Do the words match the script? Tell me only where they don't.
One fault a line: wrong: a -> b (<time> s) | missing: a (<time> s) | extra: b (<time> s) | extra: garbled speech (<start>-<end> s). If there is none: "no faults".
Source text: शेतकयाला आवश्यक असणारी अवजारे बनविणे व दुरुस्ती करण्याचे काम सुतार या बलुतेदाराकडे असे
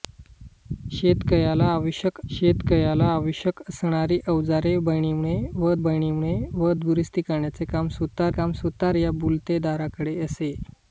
extra: शेतकयाला आवश्यक (2.3 s)
extra: बनविणे व (5.8 s)
extra: काम सुतार (8.3 s)